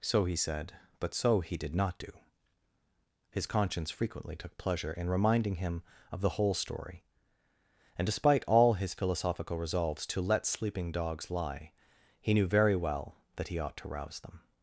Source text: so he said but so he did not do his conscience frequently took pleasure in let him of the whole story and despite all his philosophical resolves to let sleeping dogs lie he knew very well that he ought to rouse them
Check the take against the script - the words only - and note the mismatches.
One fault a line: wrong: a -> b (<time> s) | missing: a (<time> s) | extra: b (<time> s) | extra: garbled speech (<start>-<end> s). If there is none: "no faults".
wrong: let -> reminding (5.1 s)